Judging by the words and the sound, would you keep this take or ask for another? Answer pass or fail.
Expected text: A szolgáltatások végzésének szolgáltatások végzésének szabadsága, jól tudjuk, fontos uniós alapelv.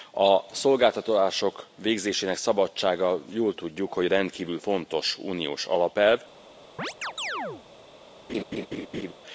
fail